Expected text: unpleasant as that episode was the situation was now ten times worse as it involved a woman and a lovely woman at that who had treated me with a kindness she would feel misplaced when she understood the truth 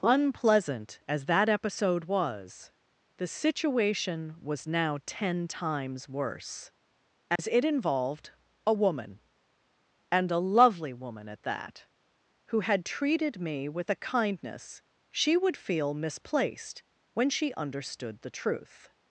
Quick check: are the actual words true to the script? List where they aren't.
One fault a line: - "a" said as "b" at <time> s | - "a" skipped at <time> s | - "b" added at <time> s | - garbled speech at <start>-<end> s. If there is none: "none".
none